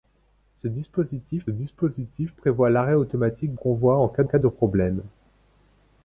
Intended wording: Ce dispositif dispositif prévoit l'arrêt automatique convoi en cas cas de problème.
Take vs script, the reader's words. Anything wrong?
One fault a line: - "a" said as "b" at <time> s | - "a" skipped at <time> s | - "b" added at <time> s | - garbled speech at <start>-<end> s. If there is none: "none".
none